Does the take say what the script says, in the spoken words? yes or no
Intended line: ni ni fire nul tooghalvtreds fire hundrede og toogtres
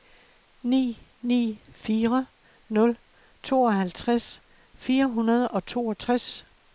yes